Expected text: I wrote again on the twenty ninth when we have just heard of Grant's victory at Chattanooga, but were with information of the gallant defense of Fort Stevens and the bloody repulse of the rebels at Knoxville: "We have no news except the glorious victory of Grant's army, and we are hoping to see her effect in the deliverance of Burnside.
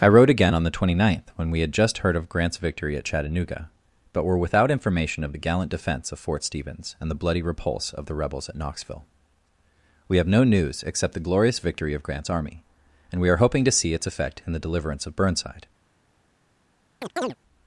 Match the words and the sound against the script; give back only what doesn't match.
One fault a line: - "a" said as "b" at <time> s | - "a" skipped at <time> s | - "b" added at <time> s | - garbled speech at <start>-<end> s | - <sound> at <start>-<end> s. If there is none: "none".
- "have" said as "had" at 1.6 s
- "with" said as "without" at 4.4 s
- "her" said as "its" at 13.9 s
- chirp at 17.0-17.4 s